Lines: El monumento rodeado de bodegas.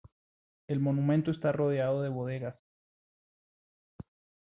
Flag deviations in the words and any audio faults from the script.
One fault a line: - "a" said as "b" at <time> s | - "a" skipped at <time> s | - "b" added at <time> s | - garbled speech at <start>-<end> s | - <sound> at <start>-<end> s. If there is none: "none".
- "está" added at 1.3 s